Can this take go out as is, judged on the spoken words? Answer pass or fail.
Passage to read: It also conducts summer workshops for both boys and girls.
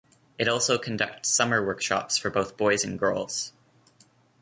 pass